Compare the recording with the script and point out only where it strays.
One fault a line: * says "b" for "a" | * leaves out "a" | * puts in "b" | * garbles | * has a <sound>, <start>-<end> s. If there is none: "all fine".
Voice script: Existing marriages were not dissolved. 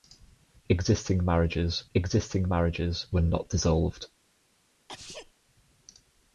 * puts in "existing marriages"
* has a sneeze, 4.9-5.3 s